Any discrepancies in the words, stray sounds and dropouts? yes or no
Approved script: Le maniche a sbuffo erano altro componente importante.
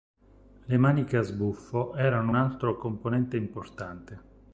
no